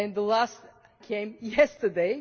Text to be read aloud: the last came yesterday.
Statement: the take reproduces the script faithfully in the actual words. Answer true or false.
true